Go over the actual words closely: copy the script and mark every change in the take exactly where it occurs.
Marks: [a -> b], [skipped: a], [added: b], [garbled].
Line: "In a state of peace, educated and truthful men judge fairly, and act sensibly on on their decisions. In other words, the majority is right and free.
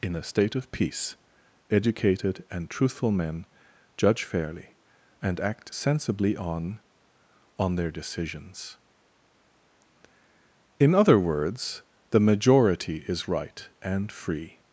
"In a state of peace, educated and truthful men judge fairly, and act sensibly on on their decisions. In other words, the majority is right and free.